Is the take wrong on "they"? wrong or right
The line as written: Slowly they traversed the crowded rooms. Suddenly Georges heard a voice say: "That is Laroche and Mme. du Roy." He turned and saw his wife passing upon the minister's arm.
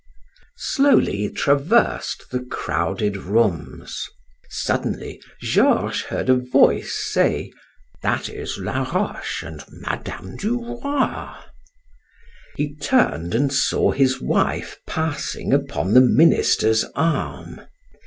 wrong